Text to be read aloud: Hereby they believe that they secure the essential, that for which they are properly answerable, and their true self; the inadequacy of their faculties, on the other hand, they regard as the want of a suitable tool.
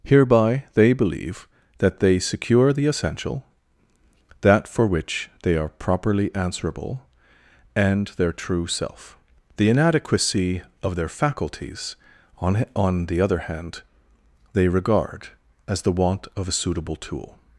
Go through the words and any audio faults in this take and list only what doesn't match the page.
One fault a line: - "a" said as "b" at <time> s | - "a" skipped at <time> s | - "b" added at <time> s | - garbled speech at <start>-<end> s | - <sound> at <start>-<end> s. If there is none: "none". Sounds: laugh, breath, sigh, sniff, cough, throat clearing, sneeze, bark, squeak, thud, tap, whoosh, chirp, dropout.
- "on" added at 12.7 s